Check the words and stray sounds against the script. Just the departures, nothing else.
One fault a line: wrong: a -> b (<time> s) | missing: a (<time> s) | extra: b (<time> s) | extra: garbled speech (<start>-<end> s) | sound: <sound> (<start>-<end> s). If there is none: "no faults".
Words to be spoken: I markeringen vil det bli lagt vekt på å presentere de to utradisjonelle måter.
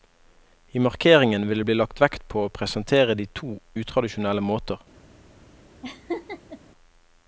sound: laugh (5.8-6.6 s)